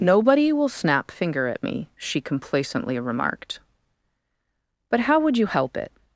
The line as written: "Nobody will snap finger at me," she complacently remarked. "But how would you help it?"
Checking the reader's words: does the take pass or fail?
pass